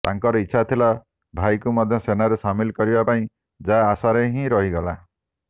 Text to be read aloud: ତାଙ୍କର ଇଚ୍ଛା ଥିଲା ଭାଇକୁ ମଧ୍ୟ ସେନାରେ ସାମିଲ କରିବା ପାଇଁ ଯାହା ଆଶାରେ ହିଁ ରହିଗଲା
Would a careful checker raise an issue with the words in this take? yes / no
no